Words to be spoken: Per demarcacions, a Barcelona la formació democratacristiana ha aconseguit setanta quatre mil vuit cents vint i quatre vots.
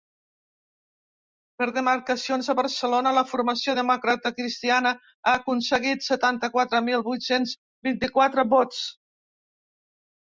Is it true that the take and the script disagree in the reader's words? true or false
false